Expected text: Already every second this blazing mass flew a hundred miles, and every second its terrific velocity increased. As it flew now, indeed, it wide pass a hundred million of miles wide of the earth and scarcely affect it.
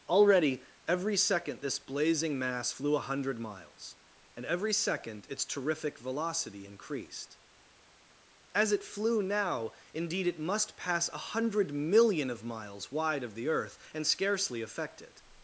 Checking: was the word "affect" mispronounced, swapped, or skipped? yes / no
no